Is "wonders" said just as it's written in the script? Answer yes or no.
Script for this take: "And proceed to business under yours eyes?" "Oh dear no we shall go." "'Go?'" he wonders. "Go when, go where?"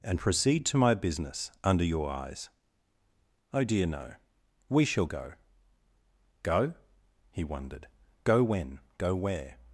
no